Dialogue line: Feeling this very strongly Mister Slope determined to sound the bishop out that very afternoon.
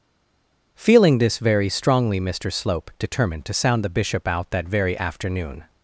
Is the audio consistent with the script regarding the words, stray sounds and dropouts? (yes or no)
yes